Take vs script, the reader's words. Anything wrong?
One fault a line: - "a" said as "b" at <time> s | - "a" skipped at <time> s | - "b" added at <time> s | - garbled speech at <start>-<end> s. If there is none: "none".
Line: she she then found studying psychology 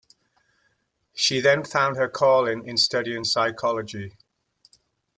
- "she" skipped at 1.4 s
- "her calling in" added at 1.9 s